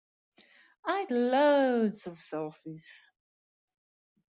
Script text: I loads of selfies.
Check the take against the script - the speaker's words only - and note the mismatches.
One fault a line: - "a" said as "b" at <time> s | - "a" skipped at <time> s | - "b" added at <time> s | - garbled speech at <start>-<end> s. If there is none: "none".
none